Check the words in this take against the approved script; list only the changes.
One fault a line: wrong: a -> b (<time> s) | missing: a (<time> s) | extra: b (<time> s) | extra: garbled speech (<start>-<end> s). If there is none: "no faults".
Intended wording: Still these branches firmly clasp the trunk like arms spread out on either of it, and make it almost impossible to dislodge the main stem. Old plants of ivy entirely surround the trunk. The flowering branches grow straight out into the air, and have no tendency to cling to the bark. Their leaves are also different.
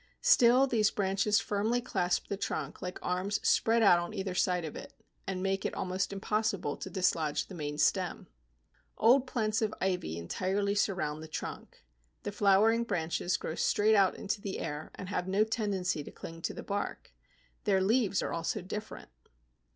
extra: side (4.3 s)